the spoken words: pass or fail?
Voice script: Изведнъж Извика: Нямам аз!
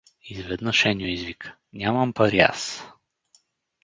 fail